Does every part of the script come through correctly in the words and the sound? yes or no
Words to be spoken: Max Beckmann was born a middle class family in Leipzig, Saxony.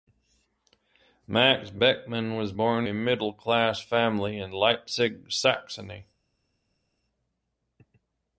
yes